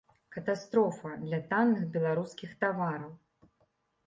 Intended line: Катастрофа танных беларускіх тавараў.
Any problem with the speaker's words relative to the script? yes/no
yes